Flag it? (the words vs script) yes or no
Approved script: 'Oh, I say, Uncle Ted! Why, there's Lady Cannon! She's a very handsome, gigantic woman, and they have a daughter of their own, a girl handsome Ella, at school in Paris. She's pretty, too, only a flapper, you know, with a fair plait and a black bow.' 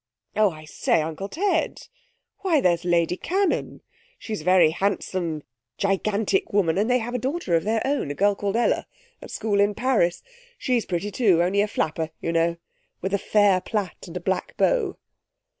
yes